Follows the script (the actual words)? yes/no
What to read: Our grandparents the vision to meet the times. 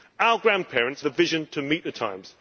yes